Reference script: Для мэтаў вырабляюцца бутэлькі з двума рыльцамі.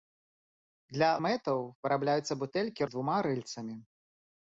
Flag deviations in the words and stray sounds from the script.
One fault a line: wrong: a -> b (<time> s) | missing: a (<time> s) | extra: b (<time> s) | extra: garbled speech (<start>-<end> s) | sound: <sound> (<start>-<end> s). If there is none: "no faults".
no faults